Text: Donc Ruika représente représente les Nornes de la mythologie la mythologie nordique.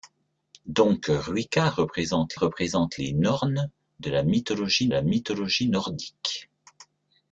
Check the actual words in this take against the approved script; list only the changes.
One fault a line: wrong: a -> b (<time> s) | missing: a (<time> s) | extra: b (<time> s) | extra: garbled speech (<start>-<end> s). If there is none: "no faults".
no faults